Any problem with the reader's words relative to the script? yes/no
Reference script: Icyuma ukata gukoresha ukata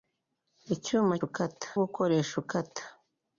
no